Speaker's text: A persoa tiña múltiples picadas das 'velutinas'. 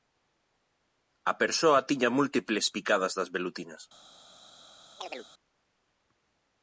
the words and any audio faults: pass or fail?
fail